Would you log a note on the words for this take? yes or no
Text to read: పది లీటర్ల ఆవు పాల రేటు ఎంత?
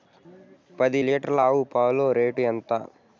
no